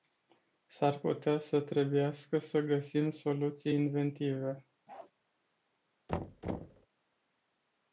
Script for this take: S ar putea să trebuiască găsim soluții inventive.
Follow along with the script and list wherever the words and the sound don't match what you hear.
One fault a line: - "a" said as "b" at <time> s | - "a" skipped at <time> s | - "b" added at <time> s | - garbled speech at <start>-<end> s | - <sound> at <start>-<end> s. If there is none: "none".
- "să" added at 2.4 s
- bark at 4.9-5.1 s
- thud at 6.1-6.9 s